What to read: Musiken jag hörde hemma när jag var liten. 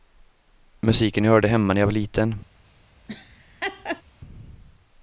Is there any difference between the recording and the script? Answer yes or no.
no